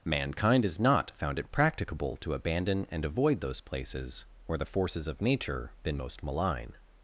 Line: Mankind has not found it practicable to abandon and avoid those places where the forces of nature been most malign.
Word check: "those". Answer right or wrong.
right